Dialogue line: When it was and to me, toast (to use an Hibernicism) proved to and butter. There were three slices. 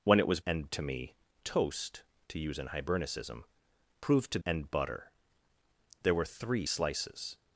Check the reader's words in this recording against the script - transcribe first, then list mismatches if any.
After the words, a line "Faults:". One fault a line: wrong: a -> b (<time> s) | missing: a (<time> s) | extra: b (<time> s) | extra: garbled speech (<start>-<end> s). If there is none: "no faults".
When it was and to me, toast (to use an Hibernicism) proved to and butter. There were three slices.
Faults:
no faults